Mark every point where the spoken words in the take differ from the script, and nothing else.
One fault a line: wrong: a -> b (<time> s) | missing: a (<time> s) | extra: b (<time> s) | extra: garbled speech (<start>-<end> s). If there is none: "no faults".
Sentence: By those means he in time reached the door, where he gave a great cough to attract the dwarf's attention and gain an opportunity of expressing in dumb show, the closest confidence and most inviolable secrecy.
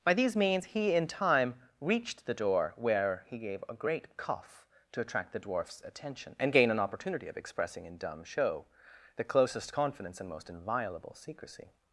wrong: those -> these (0.1 s)